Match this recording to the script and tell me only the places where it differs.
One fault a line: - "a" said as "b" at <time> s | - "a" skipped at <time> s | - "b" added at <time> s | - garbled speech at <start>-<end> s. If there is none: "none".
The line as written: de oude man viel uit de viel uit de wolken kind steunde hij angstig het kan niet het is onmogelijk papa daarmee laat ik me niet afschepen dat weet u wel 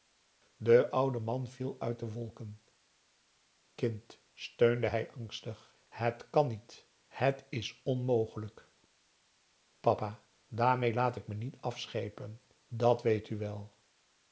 - "viel uit de" skipped at 2.1 s